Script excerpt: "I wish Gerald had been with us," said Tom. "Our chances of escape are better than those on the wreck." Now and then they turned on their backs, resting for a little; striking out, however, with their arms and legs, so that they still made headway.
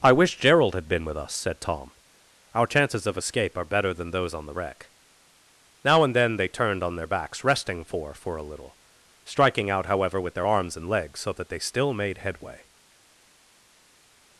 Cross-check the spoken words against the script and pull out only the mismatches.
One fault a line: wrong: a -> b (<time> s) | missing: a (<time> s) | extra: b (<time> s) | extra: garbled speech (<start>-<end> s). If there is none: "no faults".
extra: for (8.1 s)